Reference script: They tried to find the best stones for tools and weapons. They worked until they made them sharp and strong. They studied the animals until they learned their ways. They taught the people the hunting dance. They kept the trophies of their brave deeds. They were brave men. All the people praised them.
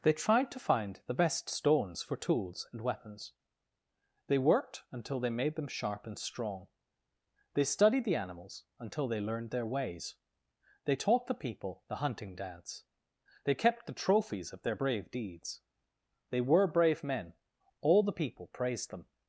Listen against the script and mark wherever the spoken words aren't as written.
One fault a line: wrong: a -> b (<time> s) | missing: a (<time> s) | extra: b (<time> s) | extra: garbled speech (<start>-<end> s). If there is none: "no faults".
no faults